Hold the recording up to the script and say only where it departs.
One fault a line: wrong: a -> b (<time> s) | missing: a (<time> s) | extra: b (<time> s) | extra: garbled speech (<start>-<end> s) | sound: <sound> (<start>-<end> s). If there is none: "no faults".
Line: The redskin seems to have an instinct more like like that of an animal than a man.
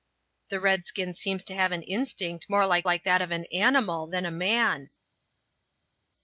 no faults